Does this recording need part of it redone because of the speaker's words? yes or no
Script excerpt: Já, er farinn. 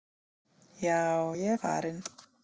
yes